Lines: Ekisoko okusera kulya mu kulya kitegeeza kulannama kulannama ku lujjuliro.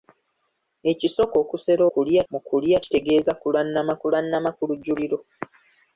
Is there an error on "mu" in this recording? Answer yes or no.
no